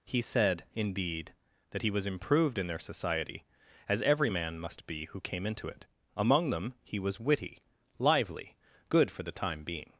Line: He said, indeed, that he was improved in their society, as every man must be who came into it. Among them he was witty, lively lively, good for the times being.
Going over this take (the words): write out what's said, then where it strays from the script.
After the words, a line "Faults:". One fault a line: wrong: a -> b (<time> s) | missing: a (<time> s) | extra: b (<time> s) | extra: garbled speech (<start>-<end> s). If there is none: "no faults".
He said, indeed, that he was improved in their society, as every man must be who came into it. Among them he was witty, lively, good for the time being.
Faults:
missing: lively (8.6 s)
wrong: times -> time (9.3 s)